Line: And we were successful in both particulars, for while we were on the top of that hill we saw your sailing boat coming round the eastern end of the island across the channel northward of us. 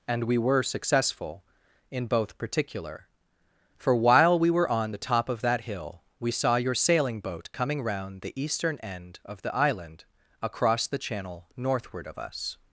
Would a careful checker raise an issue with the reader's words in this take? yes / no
yes